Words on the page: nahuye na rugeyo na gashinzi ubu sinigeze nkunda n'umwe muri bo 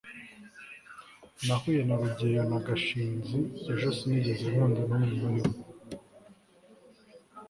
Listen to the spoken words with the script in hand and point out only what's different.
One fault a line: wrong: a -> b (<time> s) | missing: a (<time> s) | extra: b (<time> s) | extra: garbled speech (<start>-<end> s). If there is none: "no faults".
wrong: ubu -> ejo (3.7 s)